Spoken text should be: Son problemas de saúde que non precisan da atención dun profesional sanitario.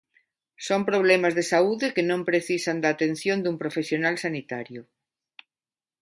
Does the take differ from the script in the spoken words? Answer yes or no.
no